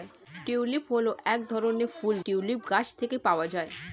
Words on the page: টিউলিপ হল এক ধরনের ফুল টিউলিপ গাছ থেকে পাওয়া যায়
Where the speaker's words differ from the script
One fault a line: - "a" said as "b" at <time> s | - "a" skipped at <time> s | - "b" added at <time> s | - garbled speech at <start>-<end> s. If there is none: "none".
none